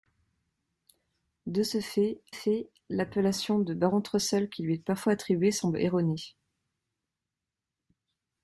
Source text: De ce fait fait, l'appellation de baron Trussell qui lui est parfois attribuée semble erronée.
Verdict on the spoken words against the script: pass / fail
pass